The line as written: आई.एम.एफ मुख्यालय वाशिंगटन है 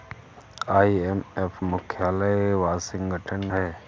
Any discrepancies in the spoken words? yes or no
no